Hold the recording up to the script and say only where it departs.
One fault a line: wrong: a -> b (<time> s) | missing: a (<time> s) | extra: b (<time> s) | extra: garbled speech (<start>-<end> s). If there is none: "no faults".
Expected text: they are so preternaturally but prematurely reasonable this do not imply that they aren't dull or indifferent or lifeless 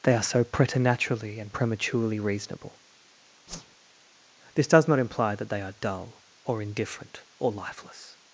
wrong: but -> and (1.4 s)
wrong: do -> does (4.7 s)
wrong: aren't -> are (5.6 s)